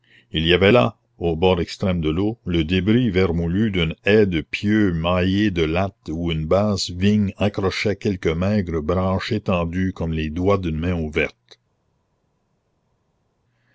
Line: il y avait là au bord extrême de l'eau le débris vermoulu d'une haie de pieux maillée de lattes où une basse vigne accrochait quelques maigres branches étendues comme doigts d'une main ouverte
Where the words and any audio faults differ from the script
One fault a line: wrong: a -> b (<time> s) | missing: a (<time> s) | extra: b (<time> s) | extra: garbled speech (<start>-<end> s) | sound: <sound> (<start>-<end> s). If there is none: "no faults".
extra: les (10.1 s)